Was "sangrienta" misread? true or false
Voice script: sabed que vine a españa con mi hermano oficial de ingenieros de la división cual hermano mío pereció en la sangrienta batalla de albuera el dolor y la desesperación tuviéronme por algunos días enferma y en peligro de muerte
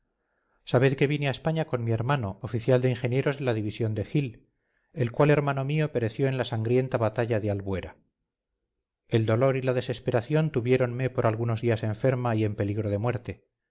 false